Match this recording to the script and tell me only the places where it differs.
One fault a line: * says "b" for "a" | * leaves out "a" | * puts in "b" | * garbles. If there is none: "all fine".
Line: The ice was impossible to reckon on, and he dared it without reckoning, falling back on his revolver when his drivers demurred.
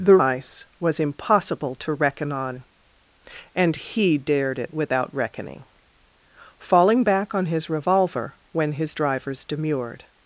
all fine